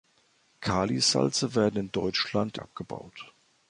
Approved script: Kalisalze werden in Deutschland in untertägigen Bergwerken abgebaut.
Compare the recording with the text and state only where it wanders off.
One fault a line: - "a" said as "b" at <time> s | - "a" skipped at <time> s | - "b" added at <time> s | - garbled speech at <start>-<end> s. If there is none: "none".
- "in untertägigen Bergwerken" skipped at 2.6 s